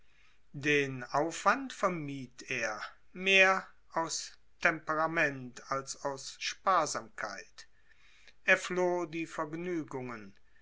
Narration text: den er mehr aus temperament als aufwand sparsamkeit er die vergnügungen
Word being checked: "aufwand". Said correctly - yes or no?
no